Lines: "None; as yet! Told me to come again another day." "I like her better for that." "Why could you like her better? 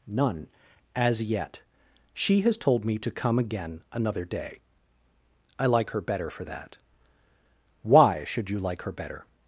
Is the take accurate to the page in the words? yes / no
no